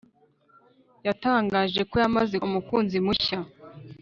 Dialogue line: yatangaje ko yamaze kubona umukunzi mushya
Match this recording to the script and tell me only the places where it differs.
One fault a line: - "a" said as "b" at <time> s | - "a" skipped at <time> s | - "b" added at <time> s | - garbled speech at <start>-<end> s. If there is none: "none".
- "kubona" skipped at 2.4 s